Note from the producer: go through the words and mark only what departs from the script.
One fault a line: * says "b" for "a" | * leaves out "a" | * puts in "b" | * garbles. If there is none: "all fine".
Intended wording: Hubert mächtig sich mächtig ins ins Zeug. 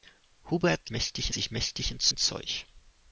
all fine